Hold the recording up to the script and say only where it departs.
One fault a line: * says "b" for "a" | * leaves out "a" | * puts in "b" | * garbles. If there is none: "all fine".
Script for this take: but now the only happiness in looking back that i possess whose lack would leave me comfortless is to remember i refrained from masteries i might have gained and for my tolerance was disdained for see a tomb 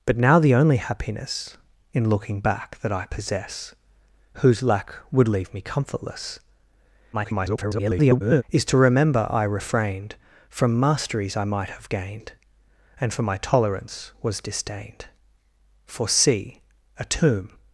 * garbles